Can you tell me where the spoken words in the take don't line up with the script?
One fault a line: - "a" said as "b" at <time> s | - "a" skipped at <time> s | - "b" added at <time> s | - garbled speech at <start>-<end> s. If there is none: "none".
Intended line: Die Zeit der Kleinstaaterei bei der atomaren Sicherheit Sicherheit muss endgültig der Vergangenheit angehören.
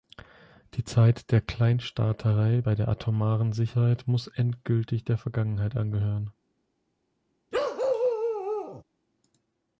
- "Sicherheit" skipped at 4.1 s